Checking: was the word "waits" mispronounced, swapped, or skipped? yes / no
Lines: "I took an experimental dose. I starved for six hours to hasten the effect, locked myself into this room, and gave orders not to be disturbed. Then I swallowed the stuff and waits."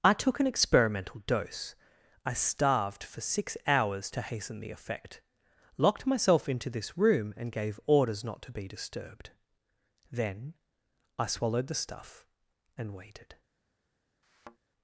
yes